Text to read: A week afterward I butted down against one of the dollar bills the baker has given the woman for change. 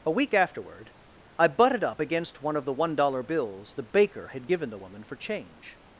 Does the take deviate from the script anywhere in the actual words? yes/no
yes